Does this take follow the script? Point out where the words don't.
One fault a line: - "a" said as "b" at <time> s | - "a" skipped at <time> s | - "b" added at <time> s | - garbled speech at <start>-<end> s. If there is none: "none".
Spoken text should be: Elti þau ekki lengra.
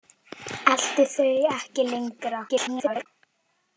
- garbled speech at 2.5-3.1 s